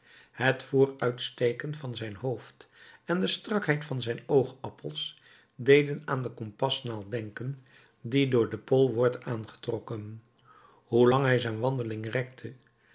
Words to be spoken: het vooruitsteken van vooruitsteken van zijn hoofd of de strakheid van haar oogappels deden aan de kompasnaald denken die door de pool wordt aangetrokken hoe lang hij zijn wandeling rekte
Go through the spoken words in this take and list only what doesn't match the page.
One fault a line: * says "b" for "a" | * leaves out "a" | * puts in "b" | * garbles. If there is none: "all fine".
* leaves out "vooruitsteken van"
* says "en" for "of"
* says "zijn" for "haar"